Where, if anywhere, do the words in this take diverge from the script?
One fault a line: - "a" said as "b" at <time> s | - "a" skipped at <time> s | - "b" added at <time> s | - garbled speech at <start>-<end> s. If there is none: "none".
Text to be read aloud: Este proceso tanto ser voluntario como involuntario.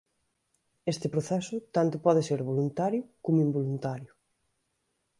- "pode" added at 2.0 s